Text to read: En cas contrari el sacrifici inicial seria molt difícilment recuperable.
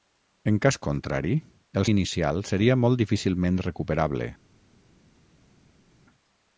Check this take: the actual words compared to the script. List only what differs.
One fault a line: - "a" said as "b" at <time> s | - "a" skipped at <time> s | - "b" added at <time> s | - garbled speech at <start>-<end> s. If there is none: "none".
- "sacrifici" skipped at 1.9 s